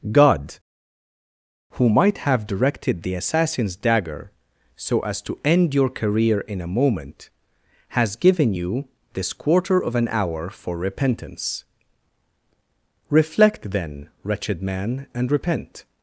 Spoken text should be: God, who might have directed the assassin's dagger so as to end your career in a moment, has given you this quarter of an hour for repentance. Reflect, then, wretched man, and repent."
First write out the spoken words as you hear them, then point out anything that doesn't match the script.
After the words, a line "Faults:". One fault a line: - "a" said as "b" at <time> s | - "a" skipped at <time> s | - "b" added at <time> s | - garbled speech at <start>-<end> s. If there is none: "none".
God, who might have directed the assassin's dagger so as to end your career in a moment, has given you this quarter of an hour for repentance. Reflect, then, wretched man, and repent."
Faults:
none